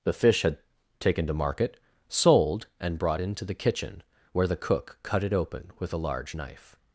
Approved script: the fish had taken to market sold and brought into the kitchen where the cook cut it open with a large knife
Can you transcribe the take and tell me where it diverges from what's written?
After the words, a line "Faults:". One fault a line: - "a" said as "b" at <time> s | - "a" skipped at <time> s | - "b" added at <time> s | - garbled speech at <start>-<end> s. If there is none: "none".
the fish had taken to market sold and brought into the kitchen where the cook cut it open with a large knife
Faults:
none